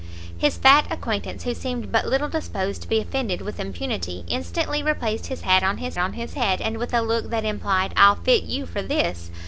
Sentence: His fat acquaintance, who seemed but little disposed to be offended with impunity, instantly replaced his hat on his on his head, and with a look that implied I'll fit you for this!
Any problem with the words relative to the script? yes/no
no